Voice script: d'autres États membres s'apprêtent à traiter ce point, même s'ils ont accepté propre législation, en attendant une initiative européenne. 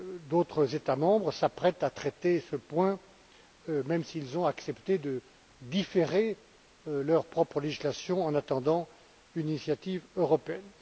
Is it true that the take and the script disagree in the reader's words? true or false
true